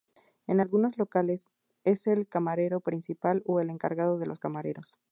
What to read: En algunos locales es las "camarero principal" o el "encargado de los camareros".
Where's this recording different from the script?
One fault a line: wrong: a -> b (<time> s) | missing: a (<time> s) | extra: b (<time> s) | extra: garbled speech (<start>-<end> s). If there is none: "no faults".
wrong: las -> el (2.1 s)